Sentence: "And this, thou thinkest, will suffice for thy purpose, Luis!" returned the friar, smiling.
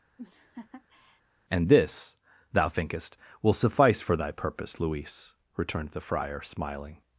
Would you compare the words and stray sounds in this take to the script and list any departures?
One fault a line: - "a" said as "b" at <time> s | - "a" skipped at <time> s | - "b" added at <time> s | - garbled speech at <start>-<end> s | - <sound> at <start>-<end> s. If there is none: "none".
- laugh at 0.2-1.2 s